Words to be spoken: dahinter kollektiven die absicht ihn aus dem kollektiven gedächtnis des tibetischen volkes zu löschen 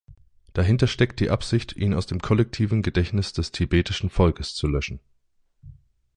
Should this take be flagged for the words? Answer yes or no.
yes